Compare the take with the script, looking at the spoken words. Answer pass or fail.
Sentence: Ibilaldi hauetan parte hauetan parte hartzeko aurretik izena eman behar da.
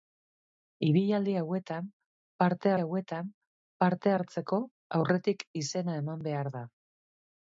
pass